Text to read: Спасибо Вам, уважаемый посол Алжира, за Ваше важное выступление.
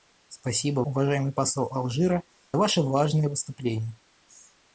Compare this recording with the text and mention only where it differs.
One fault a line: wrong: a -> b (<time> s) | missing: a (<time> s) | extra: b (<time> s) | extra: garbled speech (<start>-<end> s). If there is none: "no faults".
missing: Вам (0.8 s)
missing: за (2.2 s)